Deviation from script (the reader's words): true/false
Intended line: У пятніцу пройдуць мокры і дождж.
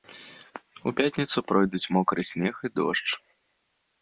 true